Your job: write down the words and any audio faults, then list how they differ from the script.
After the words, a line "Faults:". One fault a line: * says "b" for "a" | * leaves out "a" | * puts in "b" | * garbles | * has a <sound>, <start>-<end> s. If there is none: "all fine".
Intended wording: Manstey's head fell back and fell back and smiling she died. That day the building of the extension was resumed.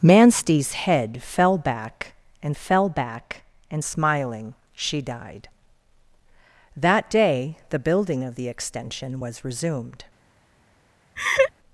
Manstey's head fell back and fell back and smiling she died. That day the building of the extension was resumed.
Faults:
* has a laugh, 11.2-11.5 s